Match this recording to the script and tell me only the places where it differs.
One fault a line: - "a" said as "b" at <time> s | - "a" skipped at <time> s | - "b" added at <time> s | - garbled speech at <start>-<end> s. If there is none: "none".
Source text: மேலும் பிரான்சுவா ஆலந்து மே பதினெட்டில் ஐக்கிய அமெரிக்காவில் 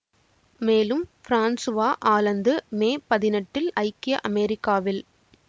none